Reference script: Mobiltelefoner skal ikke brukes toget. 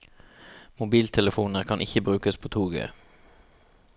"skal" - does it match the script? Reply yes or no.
no